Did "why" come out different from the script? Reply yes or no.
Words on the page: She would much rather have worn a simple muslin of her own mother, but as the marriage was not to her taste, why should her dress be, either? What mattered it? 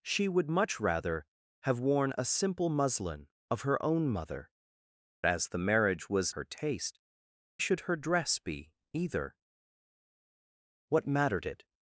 yes